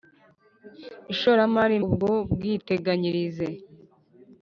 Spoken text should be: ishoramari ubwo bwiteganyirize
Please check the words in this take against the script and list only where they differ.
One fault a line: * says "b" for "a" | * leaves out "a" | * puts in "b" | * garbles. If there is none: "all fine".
all fine